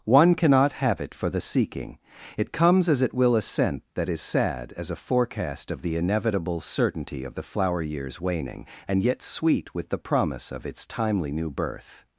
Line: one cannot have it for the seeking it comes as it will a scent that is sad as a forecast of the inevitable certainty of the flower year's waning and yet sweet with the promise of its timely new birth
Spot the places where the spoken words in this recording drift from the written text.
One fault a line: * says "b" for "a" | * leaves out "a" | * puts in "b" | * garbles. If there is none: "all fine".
all fine